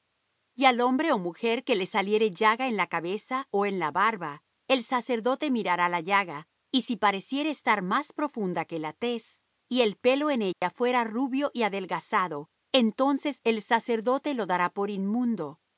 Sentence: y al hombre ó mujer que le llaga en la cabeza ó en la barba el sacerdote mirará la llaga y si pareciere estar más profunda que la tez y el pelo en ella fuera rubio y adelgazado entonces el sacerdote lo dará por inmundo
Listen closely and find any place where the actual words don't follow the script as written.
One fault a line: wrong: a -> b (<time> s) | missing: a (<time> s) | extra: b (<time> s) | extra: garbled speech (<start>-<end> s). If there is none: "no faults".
extra: saliere (1.9 s)